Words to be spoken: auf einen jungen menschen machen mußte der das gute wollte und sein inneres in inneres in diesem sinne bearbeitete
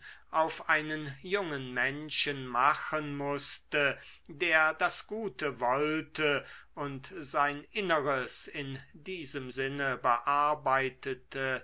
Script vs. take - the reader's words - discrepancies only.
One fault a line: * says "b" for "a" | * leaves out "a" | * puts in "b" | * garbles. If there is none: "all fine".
* leaves out "inneres in"